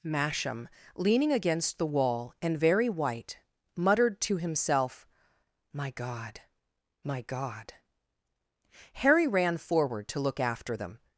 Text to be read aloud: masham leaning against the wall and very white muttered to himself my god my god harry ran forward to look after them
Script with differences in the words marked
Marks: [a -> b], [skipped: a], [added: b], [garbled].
masham leaning against the wall and very white muttered to himself my god my god harry ran forward to look after them